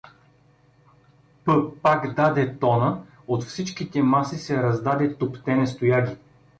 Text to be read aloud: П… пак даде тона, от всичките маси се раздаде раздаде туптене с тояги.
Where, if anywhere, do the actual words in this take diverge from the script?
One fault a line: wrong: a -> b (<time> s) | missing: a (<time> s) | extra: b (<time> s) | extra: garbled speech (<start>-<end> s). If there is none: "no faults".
missing: раздаде (5.2 s)